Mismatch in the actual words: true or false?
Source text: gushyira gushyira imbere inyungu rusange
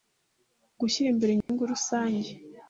true